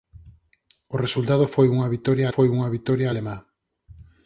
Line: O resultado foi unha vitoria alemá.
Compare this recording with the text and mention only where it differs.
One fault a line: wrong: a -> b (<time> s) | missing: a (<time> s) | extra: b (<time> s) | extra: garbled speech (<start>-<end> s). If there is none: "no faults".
extra: foi unha vitoria (2.3 s)